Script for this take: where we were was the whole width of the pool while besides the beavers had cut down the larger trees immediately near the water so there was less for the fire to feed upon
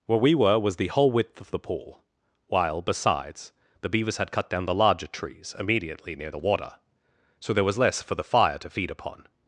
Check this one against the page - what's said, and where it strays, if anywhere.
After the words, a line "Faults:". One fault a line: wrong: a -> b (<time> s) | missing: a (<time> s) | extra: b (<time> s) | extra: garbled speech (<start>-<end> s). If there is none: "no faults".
where we were was the whole width of the pool while besides the beavers had cut down the larger trees immediately near the water so there was less for the fire to feed upon
Faults:
no faults